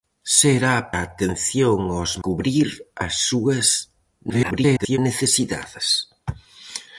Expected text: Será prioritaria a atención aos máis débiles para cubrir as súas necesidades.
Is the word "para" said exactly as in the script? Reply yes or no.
no